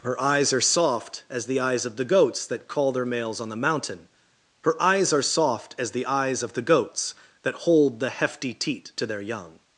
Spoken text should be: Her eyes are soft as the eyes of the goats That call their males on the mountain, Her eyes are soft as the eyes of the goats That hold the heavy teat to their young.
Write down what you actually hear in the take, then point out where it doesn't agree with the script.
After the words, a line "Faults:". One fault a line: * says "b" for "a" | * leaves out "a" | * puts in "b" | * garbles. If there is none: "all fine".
Her eyes are soft as the eyes of the goats That call their males on the mountain, Her eyes are soft as the eyes of the goats That hold the hefty teat to their young.
Faults:
* says "hefty" for "heavy"